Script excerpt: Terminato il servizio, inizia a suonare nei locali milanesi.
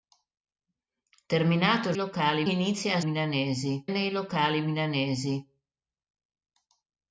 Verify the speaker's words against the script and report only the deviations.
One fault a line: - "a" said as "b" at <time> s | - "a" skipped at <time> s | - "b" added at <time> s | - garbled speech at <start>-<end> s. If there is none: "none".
- "servizio" said as "locali" at 1.9 s
- "suonare" said as "milanesi" at 3.0 s